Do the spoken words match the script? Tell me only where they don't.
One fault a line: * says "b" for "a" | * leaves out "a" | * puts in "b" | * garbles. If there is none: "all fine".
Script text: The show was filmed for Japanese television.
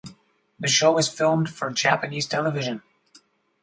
all fine